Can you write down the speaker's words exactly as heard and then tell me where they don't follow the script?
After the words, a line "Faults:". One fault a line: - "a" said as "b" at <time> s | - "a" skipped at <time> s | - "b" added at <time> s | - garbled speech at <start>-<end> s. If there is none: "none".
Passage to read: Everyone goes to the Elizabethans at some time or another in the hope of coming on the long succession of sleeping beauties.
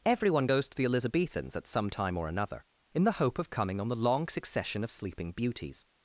Everyone goes to the Elizabethans at some time or another in the hope of coming on the long succession of sleeping beauties.
Faults:
none